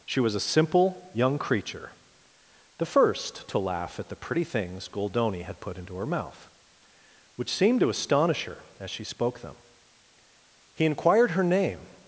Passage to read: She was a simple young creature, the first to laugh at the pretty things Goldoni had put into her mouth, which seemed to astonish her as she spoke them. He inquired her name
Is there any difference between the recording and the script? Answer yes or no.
no